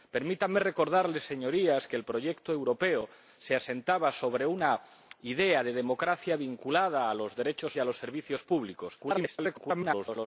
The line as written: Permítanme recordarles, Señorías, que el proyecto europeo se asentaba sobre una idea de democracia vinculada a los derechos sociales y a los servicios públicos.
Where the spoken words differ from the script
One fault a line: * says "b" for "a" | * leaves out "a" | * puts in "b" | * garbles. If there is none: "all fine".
* leaves out "sociales"
* garbles